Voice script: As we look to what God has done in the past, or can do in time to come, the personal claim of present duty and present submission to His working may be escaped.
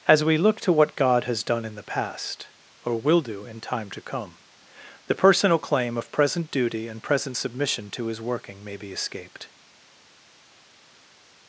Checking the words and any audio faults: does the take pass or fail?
fail